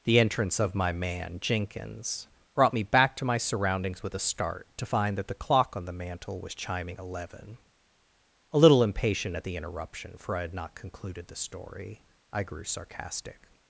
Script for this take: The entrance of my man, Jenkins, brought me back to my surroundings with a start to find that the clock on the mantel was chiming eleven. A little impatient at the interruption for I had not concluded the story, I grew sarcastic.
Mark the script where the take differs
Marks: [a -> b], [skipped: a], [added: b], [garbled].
The entrance of my man, Jenkins, brought me back to my surroundings with a start to find that the clock on the mantel was chiming eleven. A little impatient at the interruption for I had not concluded the story, I grew sarcastic.